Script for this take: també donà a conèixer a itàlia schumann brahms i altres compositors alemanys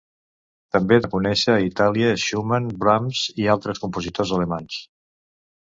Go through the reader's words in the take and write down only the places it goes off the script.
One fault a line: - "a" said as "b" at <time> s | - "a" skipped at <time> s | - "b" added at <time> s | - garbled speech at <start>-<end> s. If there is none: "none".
- "donà" skipped at 0.9 s